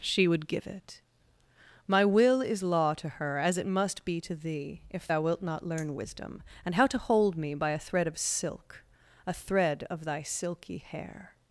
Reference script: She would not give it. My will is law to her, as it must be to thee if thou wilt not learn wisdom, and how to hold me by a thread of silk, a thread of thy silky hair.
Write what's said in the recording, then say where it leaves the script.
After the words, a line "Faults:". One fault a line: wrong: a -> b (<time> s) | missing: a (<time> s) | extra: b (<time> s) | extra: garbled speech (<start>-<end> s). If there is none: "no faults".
She would give it. My will is law to her, as it must be to thee if thou wilt not learn wisdom, and how to hold me by a thread of silk, a thread of thy silky hair.
Faults:
missing: not (0.5 s)